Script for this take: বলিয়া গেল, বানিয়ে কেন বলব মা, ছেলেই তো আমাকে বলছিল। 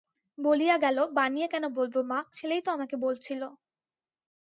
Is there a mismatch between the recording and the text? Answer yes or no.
no